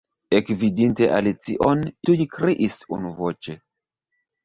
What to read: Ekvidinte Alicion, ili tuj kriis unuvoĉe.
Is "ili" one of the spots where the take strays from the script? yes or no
yes